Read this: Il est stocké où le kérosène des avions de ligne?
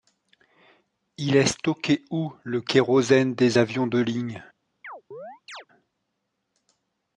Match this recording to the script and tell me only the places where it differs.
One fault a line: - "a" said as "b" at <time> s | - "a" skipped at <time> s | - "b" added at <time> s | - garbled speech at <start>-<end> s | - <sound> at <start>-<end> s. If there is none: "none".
- chirp at 4.8-5.7 s